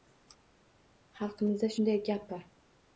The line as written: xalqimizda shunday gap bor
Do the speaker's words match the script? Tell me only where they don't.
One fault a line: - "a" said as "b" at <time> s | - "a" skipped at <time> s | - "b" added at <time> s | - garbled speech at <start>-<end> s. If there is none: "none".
none